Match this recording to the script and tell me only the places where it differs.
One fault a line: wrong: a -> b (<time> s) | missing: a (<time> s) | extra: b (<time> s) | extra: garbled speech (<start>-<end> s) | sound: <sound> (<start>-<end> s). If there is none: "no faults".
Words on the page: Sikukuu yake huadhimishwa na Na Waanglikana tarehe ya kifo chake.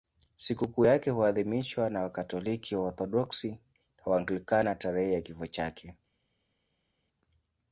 extra: Wakatoliki Waorthodoksi (2.0 s)